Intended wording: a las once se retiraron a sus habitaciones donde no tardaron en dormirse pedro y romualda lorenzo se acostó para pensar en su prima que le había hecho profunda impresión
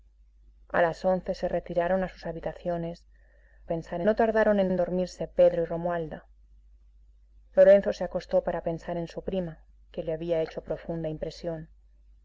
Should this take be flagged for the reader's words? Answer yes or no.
yes